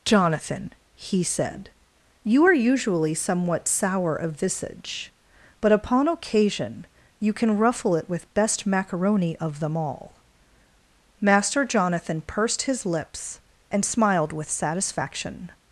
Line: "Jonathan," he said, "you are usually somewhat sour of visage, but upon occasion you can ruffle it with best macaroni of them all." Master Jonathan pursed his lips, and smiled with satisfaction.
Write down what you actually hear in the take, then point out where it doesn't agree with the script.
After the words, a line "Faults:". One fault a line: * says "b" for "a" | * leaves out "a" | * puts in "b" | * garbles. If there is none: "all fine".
"Jonathan," he said, "you are usually somewhat sour of visage, but upon occasion you can ruffle it with best macaroni of them all." Master Jonathan pursed his lips, and smiled with satisfaction.
Faults:
all fine